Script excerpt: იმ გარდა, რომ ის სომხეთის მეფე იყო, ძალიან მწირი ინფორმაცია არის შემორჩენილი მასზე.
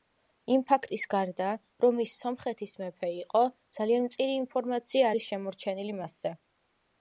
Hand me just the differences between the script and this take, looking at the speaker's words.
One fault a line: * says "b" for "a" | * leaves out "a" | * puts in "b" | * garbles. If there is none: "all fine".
* puts in "ფაქტის"